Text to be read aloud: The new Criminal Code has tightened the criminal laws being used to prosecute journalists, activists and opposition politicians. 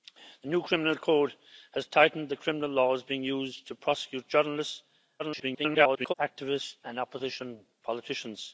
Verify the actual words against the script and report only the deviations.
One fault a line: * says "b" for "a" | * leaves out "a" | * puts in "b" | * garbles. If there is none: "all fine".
* garbles